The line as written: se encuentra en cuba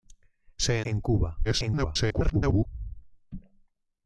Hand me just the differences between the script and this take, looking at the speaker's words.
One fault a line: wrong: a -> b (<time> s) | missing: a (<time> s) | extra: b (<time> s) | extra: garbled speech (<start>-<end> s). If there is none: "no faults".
missing: encuentra (0.8 s)
extra: garbled speech (1.4-2.7 s)